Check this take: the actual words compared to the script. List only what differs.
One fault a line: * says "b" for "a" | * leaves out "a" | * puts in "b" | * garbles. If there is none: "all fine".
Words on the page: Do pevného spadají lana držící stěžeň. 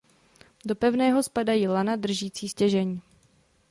all fine